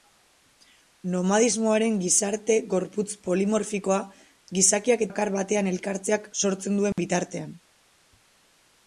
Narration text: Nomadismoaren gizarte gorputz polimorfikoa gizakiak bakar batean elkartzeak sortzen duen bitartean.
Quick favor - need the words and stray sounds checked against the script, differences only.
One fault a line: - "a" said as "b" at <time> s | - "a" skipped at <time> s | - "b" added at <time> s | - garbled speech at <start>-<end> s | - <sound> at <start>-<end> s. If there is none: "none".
- dropout at 6.9-7.0 s